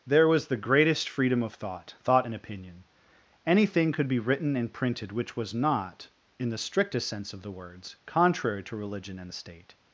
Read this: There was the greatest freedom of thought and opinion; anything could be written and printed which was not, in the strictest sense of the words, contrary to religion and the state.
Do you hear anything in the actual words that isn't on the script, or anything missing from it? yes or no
yes